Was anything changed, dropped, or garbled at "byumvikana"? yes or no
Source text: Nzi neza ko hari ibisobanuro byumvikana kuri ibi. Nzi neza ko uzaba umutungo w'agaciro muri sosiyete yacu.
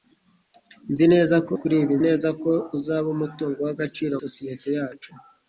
yes